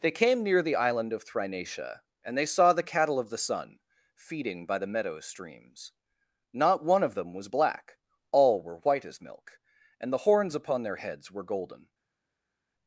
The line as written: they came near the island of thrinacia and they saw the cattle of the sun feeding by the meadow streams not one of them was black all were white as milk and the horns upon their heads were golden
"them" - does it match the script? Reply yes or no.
yes